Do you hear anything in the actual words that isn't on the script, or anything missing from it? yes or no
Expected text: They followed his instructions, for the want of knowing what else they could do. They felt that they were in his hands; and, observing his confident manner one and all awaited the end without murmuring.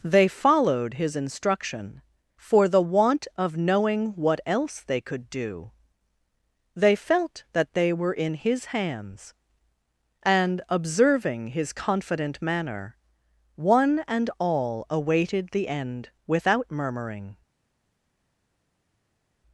yes